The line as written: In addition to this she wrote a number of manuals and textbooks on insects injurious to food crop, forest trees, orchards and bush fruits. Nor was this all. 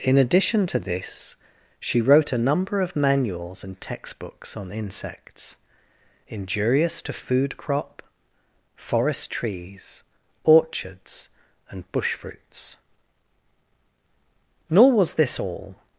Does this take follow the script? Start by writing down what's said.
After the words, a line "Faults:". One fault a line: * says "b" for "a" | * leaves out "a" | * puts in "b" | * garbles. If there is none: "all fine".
In addition to this she wrote a number of manuals and textbooks on insects injurious to food crop, forest trees, orchards and bush fruits. Nor was this all.
Faults:
all fine